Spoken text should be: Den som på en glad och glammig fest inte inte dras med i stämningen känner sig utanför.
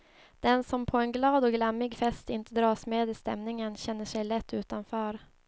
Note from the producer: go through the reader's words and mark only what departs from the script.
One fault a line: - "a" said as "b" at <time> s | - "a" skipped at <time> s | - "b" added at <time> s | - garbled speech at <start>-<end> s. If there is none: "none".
- "inte" skipped at 2.5 s
- "lätt" added at 4.2 s